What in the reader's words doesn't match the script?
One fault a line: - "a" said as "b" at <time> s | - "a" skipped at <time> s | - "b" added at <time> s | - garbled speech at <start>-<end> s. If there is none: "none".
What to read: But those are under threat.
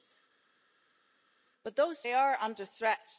none